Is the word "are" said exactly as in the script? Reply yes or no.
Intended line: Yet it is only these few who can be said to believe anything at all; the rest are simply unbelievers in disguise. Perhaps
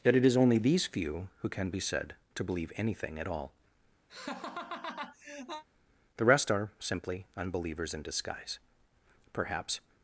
yes